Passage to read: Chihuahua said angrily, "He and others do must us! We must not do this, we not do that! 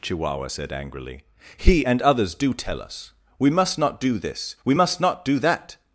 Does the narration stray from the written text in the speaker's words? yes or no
yes